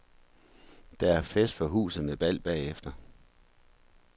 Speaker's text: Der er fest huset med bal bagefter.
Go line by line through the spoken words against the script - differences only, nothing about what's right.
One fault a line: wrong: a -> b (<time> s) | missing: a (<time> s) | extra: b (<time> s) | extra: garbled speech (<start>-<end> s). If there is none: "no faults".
extra: for (1.6 s)